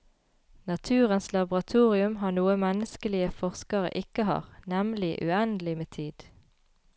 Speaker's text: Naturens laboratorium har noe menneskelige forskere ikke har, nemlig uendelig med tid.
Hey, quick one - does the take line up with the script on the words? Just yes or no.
yes